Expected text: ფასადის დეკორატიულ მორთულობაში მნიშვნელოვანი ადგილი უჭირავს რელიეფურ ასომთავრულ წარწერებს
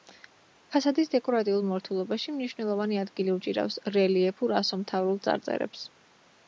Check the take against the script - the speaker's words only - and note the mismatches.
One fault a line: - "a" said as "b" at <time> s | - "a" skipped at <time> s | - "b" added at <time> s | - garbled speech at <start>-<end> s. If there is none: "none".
none